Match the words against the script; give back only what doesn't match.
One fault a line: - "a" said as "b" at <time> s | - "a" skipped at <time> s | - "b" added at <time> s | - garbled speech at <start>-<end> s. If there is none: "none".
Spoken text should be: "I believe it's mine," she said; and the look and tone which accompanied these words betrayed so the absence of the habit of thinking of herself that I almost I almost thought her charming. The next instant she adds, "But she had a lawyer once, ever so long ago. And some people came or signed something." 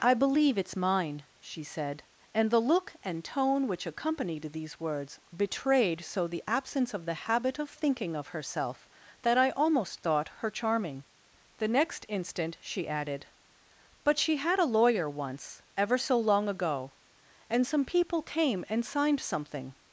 - "I almost" skipped at 10.0 s
- "adds" said as "added" at 12.9 s
- "or" said as "and" at 18.7 s